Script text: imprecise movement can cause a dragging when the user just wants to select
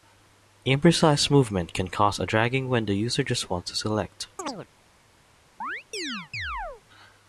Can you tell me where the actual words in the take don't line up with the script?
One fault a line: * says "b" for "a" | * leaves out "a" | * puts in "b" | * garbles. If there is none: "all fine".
all fine